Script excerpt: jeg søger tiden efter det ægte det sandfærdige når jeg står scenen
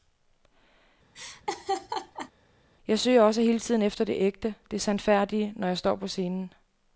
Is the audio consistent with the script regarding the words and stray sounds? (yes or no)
no